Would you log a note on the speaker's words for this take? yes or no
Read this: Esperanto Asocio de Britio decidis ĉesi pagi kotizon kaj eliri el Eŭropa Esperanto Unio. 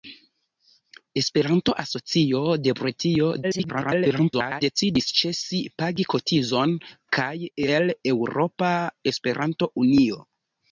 yes